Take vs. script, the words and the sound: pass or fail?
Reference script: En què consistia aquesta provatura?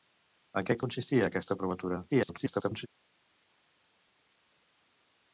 fail